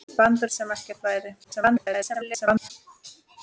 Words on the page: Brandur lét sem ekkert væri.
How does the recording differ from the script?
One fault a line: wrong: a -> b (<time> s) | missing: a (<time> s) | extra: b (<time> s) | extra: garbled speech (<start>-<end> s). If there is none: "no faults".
missing: lét (0.5 s)
extra: garbled speech (1.4-2.7 s)